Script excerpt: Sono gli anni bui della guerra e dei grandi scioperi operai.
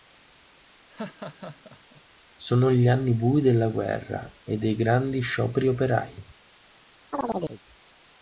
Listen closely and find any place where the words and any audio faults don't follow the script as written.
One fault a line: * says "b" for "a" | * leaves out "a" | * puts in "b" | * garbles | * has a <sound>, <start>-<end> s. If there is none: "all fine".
* has a laugh, 0.9-2.0 s
* has a chirp, 7.1-7.6 s